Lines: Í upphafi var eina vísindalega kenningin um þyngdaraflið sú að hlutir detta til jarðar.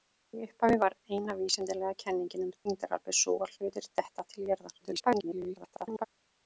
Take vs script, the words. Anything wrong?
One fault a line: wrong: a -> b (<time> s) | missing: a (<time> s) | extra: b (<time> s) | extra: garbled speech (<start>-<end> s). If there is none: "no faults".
extra: garbled speech (4.8-6.0 s)